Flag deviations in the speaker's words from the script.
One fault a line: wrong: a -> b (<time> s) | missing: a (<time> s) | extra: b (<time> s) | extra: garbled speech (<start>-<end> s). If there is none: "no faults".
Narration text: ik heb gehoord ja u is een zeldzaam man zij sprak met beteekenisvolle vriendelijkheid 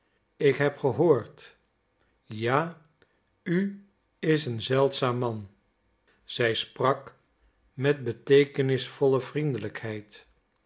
no faults